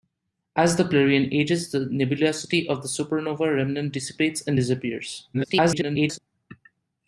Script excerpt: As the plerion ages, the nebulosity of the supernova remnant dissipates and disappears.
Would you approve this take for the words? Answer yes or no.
no